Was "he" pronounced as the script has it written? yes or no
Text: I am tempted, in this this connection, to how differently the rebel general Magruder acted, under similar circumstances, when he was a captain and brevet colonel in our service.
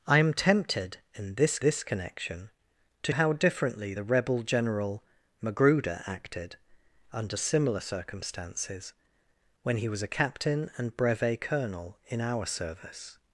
yes